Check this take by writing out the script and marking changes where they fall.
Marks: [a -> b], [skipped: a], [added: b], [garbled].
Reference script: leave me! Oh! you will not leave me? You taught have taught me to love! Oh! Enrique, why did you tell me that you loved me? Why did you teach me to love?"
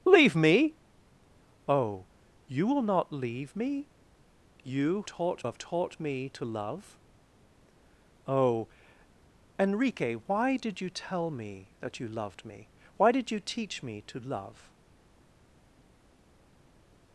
leave me! Oh! you will not leave me? You taught have taught me to love! Oh! Enrique, why did you tell me that you loved me? Why did you teach me to love?"